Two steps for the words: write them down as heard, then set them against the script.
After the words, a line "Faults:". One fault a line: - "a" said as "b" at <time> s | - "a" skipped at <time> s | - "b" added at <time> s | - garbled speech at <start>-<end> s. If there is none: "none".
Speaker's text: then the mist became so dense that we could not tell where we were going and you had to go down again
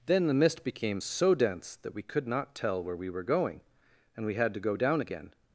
then the mist became so dense that we could not tell where we were going and we had to go down again
Faults:
- "you" said as "we" at 4.2 s